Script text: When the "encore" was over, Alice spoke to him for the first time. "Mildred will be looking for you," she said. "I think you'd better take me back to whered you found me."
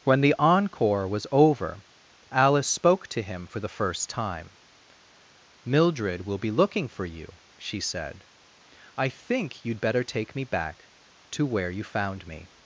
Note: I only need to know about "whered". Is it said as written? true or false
false